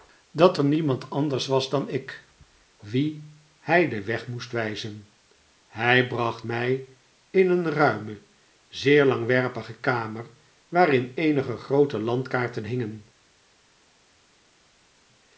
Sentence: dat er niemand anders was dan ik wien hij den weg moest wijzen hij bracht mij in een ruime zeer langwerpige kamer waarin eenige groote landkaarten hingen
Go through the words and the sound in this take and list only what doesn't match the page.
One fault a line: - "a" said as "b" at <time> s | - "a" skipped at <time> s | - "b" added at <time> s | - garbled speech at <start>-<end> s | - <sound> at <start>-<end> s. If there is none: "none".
none